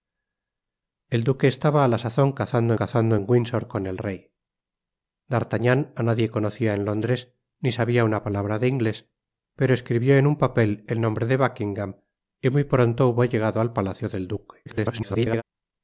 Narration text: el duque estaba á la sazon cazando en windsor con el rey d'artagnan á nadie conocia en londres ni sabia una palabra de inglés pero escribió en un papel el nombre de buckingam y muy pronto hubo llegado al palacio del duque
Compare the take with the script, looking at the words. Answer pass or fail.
fail